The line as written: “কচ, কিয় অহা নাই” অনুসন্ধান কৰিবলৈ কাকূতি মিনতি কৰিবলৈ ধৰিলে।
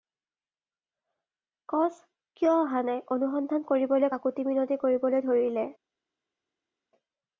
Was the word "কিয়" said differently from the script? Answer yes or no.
no